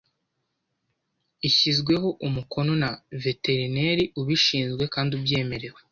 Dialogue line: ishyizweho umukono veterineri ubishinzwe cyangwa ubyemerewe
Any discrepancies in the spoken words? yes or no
yes